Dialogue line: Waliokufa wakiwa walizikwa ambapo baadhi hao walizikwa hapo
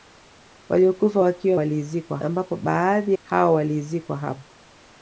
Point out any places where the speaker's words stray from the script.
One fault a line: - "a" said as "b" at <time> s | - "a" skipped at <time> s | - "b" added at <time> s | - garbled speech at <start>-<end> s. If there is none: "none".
none